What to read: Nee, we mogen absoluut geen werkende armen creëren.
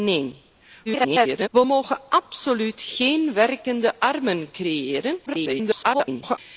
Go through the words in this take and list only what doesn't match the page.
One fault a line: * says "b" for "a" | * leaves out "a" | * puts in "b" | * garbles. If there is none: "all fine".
* garbles
* garbles